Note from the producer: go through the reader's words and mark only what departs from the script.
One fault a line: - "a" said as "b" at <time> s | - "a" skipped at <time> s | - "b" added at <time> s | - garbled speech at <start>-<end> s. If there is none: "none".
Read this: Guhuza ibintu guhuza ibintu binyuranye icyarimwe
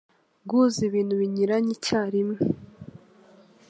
- "guhuza ibintu" skipped at 1.1 s